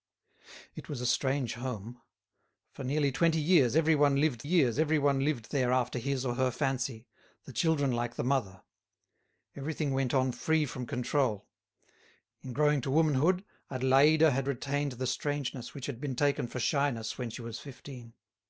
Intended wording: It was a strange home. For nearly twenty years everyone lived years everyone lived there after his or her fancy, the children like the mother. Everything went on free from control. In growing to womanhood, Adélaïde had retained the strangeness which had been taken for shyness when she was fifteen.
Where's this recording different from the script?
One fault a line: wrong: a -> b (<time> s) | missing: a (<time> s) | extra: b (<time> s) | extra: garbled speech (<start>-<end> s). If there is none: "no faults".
no faults